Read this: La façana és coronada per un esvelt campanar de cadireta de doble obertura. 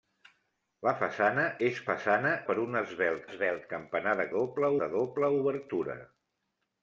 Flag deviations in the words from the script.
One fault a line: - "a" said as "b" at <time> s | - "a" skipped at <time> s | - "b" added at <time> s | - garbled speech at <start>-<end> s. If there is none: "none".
- "coronada" said as "façana" at 1.9 s
- "esvelt" added at 3.3 s
- "cadireta" said as "doble" at 4.4 s